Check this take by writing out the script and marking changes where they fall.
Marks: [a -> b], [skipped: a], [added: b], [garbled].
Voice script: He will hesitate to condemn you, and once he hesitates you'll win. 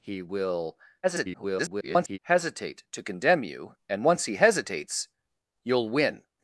He will [garbled] hesitate to condemn you, and once he hesitates you'll win.